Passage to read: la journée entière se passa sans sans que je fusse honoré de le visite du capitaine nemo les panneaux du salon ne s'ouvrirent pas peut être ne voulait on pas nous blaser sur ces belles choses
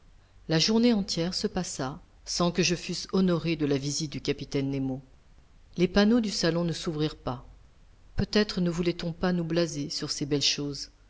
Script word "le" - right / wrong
wrong